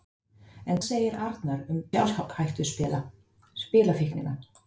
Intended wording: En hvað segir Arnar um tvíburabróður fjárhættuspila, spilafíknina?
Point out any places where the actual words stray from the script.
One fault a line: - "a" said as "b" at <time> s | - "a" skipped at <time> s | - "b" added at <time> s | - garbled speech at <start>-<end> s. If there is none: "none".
- "hvað" skipped at 0.8 s
- "tvíburabróður" skipped at 1.8 s